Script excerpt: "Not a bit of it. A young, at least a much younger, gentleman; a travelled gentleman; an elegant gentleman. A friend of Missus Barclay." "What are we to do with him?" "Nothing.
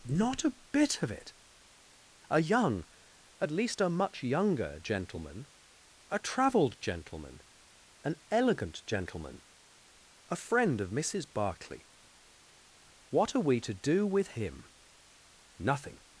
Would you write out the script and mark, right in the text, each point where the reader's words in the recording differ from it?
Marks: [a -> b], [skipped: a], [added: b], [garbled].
"Not a bit of it. A young, at least a much younger, gentleman; a travelled gentleman; an elegant gentleman. A friend of Missus Barclay." "What are we to do with him?" "Nothing.